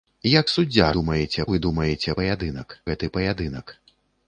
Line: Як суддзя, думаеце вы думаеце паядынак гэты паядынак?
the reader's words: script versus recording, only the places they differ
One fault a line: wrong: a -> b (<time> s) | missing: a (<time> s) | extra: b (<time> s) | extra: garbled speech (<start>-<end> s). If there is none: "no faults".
no faults